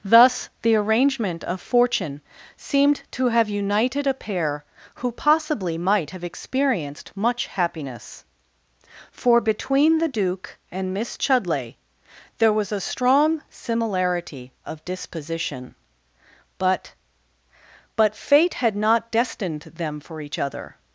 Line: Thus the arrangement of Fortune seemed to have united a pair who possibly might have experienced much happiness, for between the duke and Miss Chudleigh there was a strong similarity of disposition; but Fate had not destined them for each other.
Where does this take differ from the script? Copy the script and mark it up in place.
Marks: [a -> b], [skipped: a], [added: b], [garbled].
Thus the arrangement of Fortune seemed to have united a pair who possibly might have experienced much happiness, for between the duke and Miss Chudleigh there was a strong similarity of disposition; but [added: but] Fate had not destined them for each other.